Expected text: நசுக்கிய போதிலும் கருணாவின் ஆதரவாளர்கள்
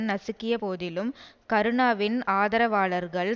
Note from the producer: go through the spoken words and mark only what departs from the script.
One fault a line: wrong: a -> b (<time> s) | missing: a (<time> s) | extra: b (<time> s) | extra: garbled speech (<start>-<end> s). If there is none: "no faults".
no faults